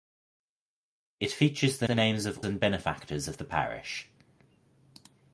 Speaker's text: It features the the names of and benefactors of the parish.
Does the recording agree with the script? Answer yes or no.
yes